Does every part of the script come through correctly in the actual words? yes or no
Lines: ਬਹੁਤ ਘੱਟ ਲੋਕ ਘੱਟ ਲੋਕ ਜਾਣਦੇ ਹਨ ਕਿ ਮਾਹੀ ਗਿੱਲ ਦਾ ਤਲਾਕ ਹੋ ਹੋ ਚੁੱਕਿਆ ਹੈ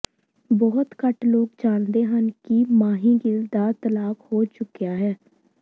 no